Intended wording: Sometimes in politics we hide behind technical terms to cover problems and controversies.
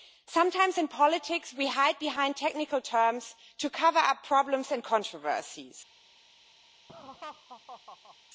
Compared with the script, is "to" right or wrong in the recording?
right